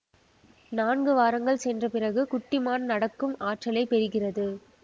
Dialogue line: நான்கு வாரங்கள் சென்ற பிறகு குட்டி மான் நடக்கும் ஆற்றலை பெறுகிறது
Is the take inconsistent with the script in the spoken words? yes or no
no